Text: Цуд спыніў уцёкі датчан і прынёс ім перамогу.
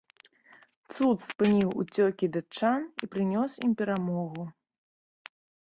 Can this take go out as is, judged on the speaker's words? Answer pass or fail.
pass